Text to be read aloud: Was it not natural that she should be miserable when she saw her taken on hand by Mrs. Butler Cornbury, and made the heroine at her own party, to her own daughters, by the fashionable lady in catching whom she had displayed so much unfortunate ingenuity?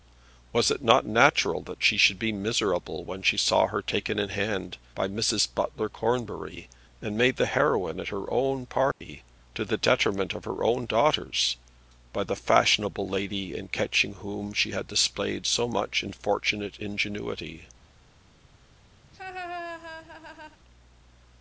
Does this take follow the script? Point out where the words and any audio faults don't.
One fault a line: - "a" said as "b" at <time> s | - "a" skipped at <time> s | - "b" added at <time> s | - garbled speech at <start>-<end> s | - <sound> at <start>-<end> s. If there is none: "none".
- "on" said as "in" at 4.2 s
- dropout at 8.9-9.0 s
- "the detriment of" added at 9.6 s
- laugh at 19.0-20.6 s